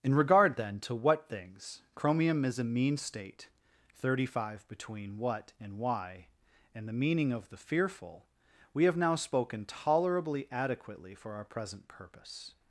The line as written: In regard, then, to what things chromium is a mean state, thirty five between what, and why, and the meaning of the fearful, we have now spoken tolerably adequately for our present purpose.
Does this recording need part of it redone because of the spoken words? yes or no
no